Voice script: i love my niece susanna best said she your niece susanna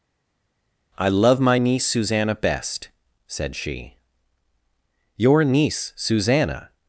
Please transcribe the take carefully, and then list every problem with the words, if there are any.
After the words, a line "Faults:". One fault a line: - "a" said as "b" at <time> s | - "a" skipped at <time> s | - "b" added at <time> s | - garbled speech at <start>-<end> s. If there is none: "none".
i love my niece susanna best said she your niece susanna
Faults:
none